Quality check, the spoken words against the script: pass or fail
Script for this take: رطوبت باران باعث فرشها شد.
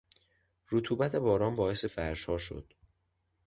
pass